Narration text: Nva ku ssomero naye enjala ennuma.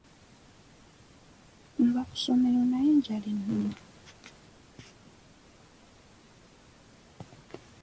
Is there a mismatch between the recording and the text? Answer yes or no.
no